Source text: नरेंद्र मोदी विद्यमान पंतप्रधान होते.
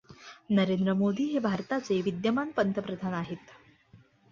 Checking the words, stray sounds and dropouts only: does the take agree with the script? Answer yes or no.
no